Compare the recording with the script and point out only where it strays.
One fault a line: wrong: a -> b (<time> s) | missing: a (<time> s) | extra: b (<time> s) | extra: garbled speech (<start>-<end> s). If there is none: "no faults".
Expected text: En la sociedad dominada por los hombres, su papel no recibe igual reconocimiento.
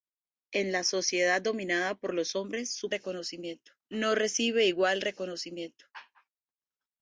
wrong: papel -> reconocimiento (2.9 s)